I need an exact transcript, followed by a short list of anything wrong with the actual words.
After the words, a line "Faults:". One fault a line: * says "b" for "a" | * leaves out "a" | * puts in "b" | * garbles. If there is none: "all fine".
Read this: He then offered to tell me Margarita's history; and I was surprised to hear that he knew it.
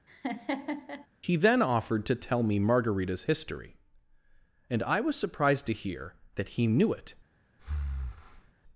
He then offered to tell me Margarita's history; and I was surprised to hear that he knew it.
Faults:
all fine